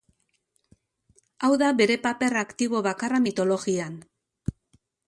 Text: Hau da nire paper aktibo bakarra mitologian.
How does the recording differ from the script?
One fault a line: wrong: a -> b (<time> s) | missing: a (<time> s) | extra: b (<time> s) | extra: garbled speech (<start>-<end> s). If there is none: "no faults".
wrong: nire -> bere (1.8 s)